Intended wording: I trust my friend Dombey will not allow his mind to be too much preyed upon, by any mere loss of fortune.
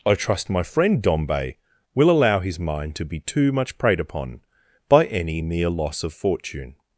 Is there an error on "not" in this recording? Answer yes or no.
yes